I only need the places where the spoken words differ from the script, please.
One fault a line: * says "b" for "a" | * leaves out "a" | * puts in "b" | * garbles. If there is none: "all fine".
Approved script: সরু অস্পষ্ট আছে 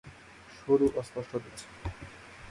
all fine